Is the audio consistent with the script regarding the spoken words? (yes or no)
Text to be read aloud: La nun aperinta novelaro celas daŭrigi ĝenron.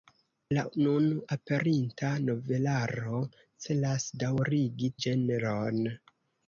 yes